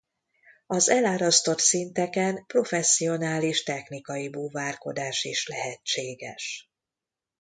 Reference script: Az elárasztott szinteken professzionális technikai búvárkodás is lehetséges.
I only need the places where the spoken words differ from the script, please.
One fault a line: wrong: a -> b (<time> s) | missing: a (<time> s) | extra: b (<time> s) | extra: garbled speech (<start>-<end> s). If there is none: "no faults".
no faults